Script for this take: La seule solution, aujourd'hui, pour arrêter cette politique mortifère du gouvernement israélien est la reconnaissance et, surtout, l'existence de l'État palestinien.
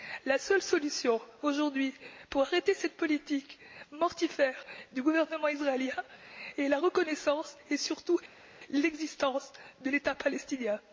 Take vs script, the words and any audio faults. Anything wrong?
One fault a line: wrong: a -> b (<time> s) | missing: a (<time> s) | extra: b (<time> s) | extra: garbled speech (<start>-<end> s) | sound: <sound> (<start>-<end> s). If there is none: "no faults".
no faults